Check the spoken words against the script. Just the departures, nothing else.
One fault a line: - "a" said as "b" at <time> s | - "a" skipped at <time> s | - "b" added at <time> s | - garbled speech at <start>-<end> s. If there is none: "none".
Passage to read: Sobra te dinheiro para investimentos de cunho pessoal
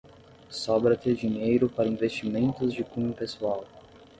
none